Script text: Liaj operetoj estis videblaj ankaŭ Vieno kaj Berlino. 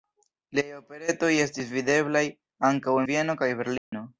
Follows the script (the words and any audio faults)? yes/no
no